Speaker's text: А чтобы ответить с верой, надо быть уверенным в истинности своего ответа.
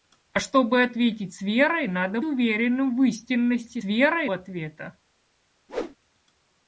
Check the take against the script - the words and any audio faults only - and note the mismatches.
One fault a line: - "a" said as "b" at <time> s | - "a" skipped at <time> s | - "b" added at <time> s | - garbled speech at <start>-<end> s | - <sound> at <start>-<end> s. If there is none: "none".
- "быть" skipped at 2.2 s
- "своего" said as "верой" at 3.8 s
- whoosh at 5.7-6.0 s